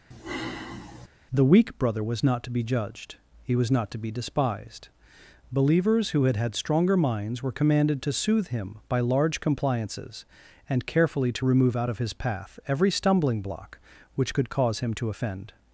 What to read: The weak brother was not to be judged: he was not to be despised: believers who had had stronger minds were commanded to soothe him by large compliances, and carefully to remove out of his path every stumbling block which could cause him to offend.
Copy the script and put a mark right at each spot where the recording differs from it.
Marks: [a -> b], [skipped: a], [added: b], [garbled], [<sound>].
[sigh] The weak brother was not to be judged: he was not to be despised: believers who had had stronger minds were commanded to soothe him by large compliances, and carefully to remove out of his path every stumbling block which could cause him to offend.